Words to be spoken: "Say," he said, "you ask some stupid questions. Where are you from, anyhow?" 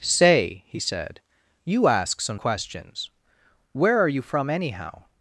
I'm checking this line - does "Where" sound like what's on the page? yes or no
yes